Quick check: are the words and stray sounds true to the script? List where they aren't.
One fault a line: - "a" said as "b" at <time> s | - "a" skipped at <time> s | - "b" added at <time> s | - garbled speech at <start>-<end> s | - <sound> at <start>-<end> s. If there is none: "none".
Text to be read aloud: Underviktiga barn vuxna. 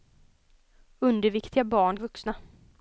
none